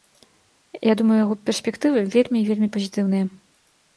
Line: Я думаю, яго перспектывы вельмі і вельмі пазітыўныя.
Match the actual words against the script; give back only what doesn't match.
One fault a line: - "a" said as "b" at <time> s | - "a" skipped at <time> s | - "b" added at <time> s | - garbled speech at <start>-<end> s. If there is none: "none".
none